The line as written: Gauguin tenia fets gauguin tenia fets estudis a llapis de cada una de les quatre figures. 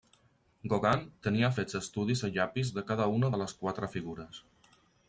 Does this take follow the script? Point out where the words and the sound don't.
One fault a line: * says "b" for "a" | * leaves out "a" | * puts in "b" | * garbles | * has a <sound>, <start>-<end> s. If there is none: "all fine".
* leaves out "gauguin tenia fets"